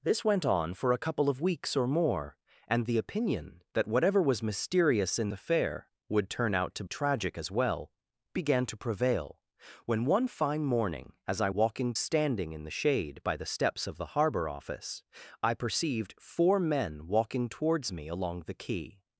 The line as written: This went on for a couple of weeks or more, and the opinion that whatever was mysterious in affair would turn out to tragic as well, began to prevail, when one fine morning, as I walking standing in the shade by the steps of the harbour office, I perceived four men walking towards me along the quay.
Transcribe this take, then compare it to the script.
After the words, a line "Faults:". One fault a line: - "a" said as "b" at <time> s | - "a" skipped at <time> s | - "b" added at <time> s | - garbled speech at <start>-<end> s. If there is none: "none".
This went on for a couple of weeks or more, and the opinion that whatever was mysterious in affair would turn out to tragic as well, began to prevail, when one fine morning, as I walking standing in the shade by the steps of the harbour office, I perceived four men walking towards me along the quay.
Faults:
none